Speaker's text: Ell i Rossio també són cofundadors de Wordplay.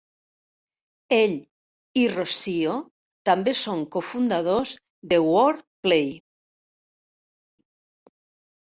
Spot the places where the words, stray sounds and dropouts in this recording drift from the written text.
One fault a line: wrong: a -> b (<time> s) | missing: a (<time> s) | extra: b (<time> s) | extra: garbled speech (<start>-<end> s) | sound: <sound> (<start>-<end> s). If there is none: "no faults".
no faults